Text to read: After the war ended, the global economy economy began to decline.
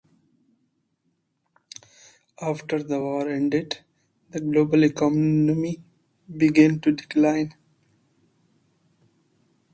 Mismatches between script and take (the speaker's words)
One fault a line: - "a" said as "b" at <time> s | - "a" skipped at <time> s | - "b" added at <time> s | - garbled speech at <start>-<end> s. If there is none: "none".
- "economy" skipped at 5.8 s